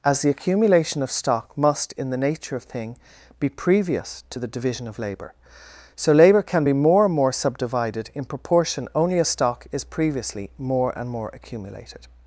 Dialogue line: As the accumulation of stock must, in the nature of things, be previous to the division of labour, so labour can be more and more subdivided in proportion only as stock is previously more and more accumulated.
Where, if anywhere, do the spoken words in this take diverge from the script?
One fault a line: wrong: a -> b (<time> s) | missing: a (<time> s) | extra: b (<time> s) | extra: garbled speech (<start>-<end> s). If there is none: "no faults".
wrong: things -> thing (2.6 s)